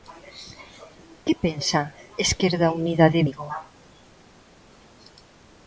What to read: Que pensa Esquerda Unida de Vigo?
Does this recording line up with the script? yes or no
yes